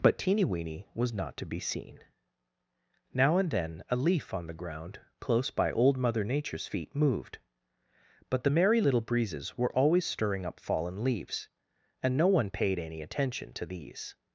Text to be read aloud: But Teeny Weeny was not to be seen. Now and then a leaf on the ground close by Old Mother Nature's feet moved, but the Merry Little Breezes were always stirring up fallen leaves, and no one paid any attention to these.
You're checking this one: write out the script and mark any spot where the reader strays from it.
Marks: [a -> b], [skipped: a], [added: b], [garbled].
But Teeny Weeny was not to be seen. Now and then a leaf on the ground close by Old Mother Nature's feet moved, but the Merry Little Breezes were always stirring up fallen leaves, and no one paid any attention to these.